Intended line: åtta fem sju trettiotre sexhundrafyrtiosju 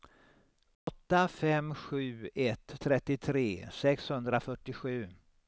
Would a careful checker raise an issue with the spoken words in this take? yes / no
yes